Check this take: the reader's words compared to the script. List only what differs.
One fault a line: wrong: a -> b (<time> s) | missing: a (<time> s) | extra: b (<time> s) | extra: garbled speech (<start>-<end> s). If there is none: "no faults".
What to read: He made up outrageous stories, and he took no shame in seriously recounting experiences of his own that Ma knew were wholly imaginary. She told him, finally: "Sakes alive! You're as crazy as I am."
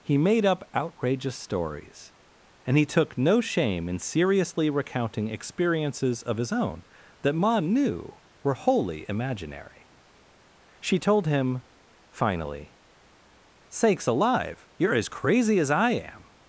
no faults